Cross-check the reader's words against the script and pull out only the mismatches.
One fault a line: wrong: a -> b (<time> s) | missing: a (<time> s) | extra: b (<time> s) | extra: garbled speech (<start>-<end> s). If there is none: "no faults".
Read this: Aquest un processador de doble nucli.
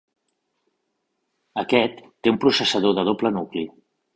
extra: té (2.2 s)